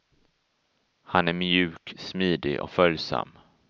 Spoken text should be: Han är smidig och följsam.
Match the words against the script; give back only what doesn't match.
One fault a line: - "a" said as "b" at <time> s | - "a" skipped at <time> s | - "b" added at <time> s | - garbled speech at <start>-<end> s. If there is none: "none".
- "mjuk" added at 1.3 s